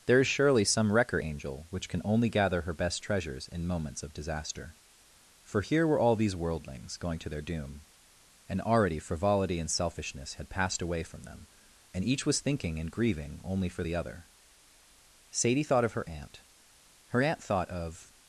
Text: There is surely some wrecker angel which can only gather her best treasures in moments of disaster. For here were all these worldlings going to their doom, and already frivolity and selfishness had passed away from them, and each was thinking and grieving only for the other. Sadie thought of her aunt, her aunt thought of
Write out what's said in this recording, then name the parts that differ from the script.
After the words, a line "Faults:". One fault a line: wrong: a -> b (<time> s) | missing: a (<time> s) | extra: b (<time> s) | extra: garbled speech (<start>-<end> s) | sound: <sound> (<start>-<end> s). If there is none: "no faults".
There is surely some wrecker angel which can only gather her best treasures in moments of disaster. For here were all these worldlings going to their doom, and already frivolity and selfishness had passed away from them, and each was thinking and grieving only for the other. Sadie thought of her aunt, her aunt thought of
Faults:
no faults